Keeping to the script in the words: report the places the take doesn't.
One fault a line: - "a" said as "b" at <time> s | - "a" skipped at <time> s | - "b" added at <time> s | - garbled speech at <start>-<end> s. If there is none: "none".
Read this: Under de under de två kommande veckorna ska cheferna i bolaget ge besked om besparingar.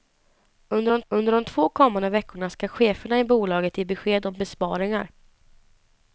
none